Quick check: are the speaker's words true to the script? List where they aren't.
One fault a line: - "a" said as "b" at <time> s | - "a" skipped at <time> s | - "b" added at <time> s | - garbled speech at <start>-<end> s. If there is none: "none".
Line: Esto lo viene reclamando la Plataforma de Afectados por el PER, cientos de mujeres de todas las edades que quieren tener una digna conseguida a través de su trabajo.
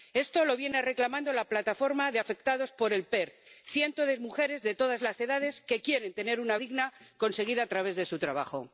none